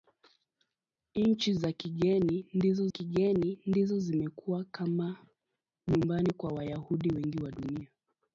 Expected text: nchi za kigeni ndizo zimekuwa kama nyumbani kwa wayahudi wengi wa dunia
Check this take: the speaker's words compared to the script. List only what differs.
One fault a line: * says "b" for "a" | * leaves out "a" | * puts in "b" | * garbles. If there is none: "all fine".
* puts in "kigeni ndizo"